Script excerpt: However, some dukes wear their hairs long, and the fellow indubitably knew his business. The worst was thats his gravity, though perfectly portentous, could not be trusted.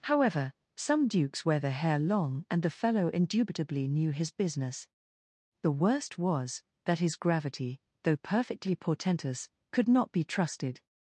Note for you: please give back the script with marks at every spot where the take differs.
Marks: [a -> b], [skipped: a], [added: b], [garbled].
However, some dukes wear their [hairs -> hair] long, and the fellow indubitably knew his business. The worst was [thats -> that] his gravity, though perfectly portentous, could not be trusted.